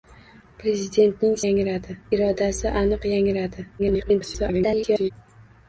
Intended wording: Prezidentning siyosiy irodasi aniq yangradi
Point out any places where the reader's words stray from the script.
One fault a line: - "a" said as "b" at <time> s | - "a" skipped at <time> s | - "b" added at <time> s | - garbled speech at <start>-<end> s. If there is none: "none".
- "siyosiy" said as "yangradi" at 1.5 s
- garbled speech at 3.8-5.1 s